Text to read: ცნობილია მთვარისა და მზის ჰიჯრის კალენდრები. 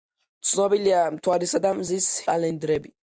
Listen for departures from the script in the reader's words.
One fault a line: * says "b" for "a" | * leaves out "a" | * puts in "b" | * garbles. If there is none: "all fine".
* leaves out "ჰიჯრის"